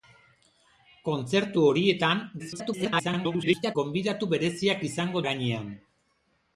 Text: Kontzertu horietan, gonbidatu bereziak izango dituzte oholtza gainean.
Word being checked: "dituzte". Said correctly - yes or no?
no